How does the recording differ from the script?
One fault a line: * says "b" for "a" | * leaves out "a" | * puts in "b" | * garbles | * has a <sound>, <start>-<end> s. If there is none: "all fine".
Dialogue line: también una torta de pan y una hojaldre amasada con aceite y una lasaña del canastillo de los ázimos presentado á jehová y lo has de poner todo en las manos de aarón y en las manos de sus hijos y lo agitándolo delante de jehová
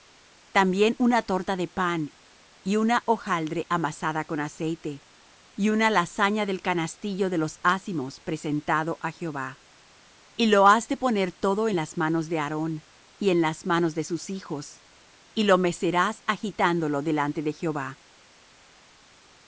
* puts in "mecerás"